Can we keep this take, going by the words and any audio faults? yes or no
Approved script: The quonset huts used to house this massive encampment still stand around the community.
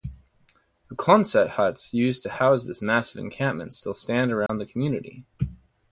no